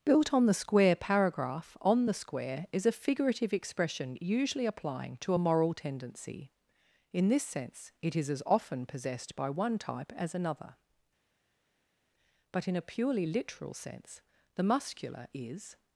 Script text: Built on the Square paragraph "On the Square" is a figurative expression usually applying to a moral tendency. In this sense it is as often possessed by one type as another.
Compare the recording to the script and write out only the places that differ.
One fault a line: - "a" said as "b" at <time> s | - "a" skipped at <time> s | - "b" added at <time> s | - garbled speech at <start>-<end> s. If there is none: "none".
- "But in a purely literal sense the Muscular is" added at 12.5 s